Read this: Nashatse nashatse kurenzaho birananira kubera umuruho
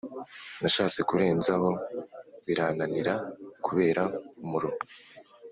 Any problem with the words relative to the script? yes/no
yes